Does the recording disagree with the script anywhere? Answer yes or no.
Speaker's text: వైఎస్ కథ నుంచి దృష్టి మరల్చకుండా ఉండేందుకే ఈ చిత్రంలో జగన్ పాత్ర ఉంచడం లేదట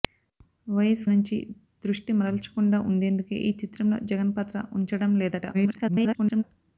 yes